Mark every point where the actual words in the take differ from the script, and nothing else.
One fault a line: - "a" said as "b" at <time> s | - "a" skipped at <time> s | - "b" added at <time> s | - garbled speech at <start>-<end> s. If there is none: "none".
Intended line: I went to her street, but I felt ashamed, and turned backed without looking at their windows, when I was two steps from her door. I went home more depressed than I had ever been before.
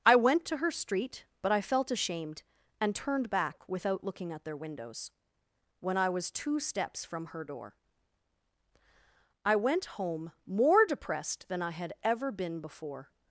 - "backed" said as "back" at 3.3 s